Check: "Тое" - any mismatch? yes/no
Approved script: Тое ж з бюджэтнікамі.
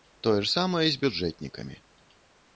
no